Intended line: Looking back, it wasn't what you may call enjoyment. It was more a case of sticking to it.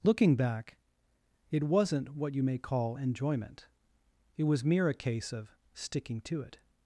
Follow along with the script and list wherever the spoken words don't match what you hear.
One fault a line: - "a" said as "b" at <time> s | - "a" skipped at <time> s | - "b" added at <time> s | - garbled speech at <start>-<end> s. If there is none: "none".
- "more" said as "mere" at 4.6 s